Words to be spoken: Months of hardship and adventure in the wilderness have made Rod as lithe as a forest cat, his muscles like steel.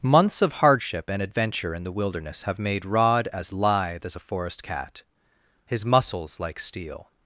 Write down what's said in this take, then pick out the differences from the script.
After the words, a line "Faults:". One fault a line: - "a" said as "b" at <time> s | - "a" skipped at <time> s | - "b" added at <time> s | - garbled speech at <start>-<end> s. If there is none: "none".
Months of hardship and adventure in the wilderness have made Rod as lithe as a forest cat, his muscles like steel.
Faults:
none